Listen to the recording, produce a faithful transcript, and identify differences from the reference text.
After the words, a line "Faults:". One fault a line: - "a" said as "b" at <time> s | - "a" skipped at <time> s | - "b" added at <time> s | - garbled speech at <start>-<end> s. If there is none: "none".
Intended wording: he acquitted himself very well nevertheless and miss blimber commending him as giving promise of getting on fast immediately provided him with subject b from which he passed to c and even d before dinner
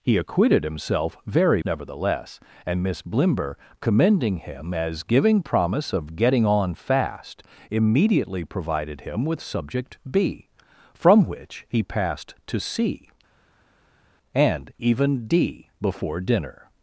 he acquitted himself very nevertheless and miss blimber commending him as giving promise of getting on fast immediately provided him with subject b from which he passed to c and even d before dinner
Faults:
- "well" skipped at 1.6 s